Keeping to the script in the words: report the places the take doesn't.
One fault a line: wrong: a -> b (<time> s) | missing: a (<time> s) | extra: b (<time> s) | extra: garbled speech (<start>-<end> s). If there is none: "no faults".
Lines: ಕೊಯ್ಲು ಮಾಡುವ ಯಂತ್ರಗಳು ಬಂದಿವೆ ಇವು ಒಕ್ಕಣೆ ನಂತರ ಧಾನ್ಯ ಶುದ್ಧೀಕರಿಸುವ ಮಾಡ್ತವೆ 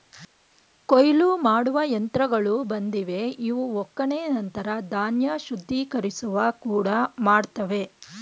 extra: ಕೂಡ (6.6 s)